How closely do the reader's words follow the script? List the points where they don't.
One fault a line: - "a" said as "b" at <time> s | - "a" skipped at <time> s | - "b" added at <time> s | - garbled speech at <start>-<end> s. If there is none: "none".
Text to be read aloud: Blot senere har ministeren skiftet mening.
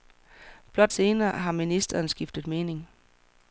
none